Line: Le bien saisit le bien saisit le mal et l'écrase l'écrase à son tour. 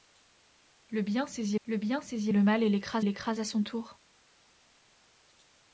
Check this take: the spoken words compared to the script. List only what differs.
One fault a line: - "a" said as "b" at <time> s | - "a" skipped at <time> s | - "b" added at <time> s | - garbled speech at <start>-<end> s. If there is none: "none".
none